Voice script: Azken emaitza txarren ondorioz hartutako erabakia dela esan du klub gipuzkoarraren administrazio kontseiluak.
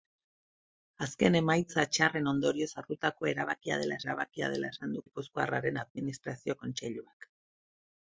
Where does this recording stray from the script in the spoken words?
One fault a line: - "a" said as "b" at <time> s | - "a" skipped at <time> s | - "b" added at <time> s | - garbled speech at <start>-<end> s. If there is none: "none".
- "erabakia dela" added at 4.0 s
- "klub" skipped at 5.1 s